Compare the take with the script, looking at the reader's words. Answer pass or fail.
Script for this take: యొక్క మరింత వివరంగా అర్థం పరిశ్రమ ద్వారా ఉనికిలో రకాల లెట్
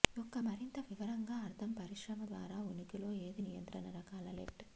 fail